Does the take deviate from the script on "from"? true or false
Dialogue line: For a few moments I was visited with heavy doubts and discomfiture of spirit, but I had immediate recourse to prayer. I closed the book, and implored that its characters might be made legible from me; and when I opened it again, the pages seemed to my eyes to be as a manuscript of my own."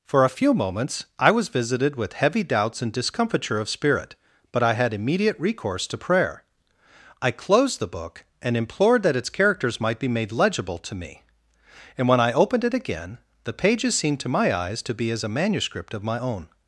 true